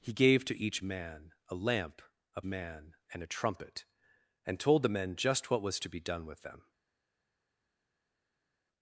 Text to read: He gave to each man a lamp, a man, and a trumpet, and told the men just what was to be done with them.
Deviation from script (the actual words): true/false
false